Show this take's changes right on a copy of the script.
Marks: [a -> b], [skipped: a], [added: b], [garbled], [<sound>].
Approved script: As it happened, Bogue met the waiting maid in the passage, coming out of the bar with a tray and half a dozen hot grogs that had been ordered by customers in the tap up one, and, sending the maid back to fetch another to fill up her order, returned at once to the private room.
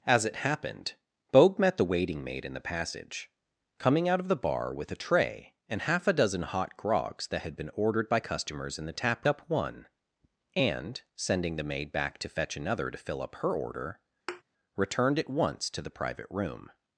As it happened, Bogue met the waiting maid in the passage, coming out of the bar with a tray and half a dozen hot grogs that had been ordered by customers in the tap up one, and, sending the maid back to fetch another to fill up her order, [thud] returned at once to the private room.